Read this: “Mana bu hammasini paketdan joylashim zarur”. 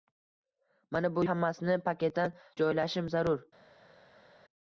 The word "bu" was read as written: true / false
true